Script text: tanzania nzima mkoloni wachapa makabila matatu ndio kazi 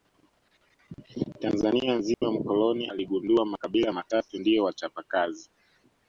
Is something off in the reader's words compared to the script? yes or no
yes